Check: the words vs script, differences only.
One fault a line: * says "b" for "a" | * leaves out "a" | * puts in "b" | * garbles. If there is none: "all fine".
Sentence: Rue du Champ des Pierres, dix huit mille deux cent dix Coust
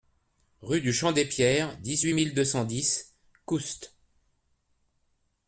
all fine